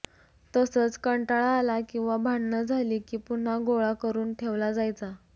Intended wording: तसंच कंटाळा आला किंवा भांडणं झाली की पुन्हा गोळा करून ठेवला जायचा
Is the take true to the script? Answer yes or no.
yes